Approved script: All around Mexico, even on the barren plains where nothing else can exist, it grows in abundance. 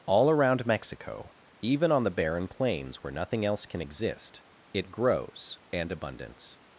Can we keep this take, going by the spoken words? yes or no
no